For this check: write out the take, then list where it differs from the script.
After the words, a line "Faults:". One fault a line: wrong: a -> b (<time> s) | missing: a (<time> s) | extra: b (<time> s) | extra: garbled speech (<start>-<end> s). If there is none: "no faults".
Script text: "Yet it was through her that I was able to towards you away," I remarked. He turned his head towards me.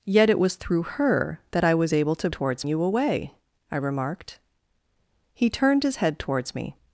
"Yet it was through her that I was able to towards you away," I remarked. He turned his head towards me.
Faults:
no faults